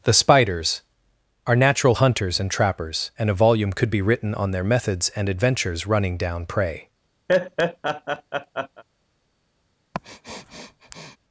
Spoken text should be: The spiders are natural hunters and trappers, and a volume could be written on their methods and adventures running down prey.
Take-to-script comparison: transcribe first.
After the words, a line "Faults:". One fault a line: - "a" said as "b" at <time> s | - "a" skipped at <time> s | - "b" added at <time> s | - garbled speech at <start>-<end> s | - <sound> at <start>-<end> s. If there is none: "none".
The spiders are natural hunters and trappers, and a volume could be written on their methods and adventures running down prey.
Faults:
- laugh at 7.3-8.8 s
- sniff at 9.9-11.2 s